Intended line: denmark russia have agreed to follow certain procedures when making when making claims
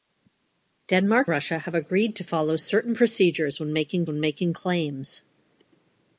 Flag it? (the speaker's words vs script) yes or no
no